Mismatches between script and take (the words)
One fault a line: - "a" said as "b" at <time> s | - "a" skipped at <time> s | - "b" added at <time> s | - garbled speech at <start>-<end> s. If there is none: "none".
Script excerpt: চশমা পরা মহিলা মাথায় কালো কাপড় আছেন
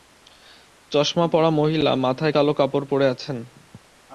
- "পরে" added at 2.9 s